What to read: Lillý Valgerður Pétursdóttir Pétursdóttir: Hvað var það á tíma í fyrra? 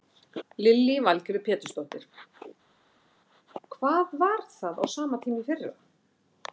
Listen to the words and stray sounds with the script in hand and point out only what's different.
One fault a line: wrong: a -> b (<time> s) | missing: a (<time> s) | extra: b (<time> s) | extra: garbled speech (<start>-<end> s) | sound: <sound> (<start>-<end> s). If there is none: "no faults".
missing: Pétursdóttir (2.1 s)
extra: sama (5.0 s)